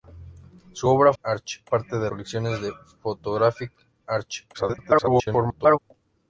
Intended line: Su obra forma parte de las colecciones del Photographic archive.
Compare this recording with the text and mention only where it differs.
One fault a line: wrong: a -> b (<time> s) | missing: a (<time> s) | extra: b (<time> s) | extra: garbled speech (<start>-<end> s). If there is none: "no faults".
wrong: forma -> archive (1.2 s)
missing: las (2.1 s)
extra: garbled speech (4.5-5.8 s)